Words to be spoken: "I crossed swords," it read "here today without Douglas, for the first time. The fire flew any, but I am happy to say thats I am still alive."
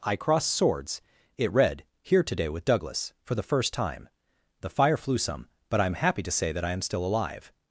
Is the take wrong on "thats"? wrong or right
wrong